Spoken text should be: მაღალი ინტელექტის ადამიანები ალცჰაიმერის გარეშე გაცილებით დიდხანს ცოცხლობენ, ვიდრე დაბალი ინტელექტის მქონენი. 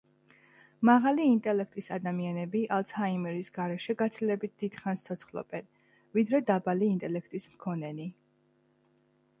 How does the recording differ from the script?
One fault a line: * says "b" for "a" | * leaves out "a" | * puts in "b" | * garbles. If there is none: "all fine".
all fine